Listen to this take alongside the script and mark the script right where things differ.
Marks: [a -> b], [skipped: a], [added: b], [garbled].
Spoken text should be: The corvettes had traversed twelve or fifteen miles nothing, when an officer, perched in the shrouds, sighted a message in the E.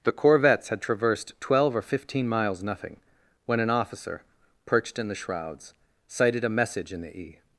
The corvettes had traversed twelve or fifteen miles nothing, when an officer, perched in the shrouds, sighted a message in the E.